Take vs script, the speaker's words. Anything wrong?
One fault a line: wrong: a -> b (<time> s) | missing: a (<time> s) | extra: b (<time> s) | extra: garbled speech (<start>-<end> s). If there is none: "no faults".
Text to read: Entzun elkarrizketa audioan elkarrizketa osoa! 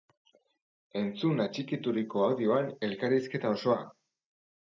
wrong: elkarrizketa -> atxikituriko (1.4 s)